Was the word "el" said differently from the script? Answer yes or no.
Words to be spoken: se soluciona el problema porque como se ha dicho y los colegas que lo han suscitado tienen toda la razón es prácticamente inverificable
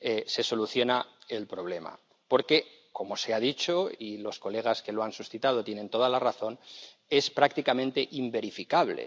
no